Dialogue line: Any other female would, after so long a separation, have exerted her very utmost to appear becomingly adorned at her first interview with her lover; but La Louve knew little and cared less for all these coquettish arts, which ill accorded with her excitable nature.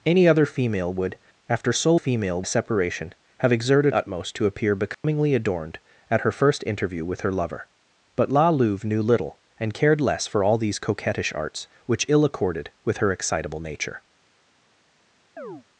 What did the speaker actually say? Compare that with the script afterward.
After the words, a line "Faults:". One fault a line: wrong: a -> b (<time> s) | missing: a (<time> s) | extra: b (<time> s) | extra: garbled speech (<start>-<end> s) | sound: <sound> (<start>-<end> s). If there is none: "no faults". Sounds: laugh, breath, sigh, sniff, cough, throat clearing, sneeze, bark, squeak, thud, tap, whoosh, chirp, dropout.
Any other female would, after so female a separation, have exerted utmost to appear becomingly adorned at her first interview with her lover; but La Louve knew little and cared less for all these coquettish arts, which ill accorded with her excitable nature.
Faults:
wrong: long -> female (1.9 s)
missing: her very (3.9 s)
sound: dropout (4.9-5.0 s)
sound: chirp (15.4-15.6 s)